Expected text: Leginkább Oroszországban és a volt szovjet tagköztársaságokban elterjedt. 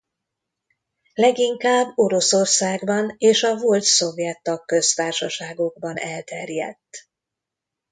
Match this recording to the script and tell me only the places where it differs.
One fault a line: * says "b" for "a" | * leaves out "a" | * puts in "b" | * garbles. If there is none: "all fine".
all fine